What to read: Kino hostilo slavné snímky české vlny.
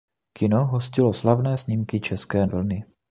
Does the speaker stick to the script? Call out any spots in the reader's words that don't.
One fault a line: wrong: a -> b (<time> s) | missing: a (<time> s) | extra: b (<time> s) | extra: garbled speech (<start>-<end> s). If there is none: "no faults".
no faults